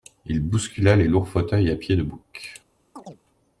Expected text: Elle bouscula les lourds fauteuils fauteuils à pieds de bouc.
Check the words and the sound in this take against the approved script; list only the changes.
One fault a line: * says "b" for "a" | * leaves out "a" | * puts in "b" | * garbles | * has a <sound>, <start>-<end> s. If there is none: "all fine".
* says "Il" for "Elle"
* leaves out "fauteuils"
* has a chirp, 2.9-3.2 s